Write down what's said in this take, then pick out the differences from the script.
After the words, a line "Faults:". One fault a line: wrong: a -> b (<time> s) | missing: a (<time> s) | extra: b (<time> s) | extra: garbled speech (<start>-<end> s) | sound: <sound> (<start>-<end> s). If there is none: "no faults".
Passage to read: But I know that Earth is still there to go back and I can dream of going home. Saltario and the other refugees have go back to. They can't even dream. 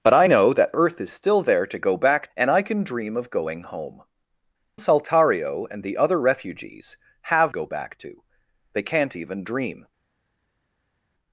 But I know that Earth is still there to go back and I can dream of going home. Saltario and the other refugees have go back to. They can't even dream.
Faults:
no faults